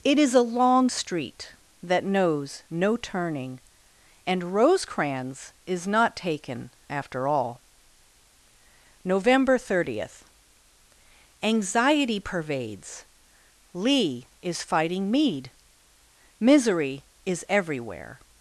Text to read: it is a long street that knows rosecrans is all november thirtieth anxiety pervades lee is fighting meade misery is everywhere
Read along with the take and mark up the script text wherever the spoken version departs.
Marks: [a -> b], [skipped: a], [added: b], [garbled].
it is a long street that knows [added: no turning and] rosecrans is [added: not taken after] all november thirtieth anxiety pervades lee is fighting meade misery is everywhere